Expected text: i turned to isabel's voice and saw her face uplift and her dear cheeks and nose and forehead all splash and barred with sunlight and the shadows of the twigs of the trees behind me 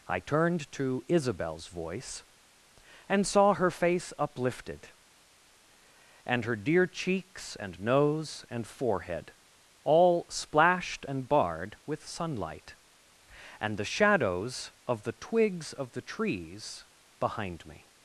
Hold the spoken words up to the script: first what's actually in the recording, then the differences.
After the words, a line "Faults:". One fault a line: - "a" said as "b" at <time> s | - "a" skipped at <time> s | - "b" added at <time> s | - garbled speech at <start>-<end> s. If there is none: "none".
i turned to isabel's voice and saw her face uplifted and her dear cheeks and nose and forehead all splashed and barred with sunlight and the shadows of the twigs of the trees behind me
Faults:
- "uplift" said as "uplifted" at 4.2 s
- "splash" said as "splashed" at 10.3 s